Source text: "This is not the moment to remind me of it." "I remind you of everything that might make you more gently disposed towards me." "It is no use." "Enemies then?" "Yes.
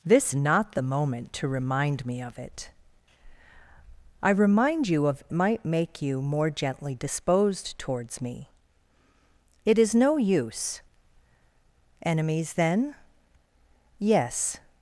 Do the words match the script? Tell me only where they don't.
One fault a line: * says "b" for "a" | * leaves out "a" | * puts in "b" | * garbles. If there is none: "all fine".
* leaves out "is"
* leaves out "everything that"